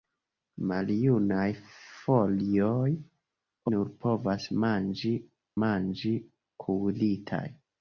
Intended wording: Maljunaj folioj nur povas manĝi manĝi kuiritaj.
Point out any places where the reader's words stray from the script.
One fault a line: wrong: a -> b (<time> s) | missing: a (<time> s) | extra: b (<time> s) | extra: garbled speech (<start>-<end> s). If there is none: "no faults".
no faults